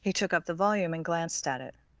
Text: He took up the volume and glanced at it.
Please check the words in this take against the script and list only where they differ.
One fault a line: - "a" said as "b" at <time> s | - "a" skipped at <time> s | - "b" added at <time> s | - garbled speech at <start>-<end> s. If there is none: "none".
none